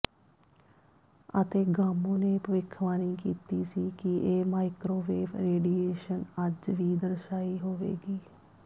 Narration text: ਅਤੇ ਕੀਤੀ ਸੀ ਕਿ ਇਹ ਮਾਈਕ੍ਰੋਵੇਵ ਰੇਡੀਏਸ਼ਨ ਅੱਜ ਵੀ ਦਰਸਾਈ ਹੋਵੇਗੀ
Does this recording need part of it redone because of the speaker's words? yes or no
yes